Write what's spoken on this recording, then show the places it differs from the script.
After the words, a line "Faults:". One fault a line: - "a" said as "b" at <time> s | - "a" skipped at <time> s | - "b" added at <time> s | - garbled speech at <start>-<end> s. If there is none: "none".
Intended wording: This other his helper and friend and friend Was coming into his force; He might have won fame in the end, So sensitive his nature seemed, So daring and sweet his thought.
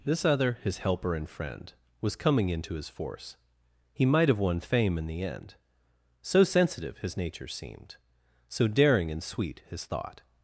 This other his helper and friend Was coming into his force; He might have won fame in the end, So sensitive his nature seemed, So daring and sweet his thought.
Faults:
- "and friend" skipped at 1.7 s